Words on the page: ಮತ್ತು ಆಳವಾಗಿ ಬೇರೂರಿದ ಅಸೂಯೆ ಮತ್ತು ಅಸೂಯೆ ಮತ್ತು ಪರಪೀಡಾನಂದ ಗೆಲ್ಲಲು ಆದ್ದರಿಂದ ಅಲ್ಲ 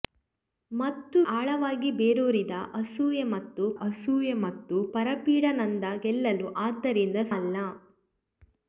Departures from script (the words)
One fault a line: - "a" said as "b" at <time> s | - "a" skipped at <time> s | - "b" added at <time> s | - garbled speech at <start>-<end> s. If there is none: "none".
none